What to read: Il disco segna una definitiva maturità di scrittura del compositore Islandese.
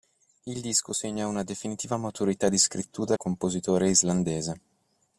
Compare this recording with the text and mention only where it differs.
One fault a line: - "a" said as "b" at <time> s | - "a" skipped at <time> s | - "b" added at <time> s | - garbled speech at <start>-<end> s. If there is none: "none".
- "del" skipped at 3.2 s